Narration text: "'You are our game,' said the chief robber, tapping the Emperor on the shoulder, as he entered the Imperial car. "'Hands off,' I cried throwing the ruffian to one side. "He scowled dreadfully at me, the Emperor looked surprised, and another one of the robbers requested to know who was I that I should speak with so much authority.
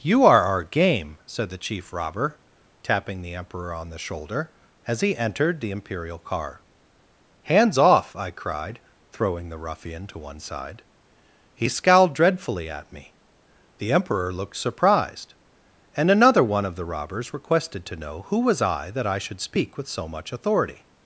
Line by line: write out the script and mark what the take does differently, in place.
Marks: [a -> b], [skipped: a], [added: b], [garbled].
"'You are our game,' said the chief robber, tapping the Emperor on the shoulder, as he entered the Imperial car. "'Hands off,' I cried throwing the ruffian to one side. "He scowled dreadfully at me, the Emperor looked surprised, and another one of the robbers requested to know who was I that I should speak with so much authority.